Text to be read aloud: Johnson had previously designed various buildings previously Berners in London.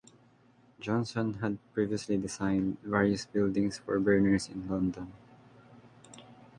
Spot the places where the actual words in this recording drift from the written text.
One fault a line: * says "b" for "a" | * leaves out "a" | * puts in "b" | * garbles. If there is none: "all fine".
* says "for" for "previously"